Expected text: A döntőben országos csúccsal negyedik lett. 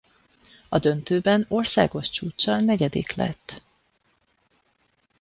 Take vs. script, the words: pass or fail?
pass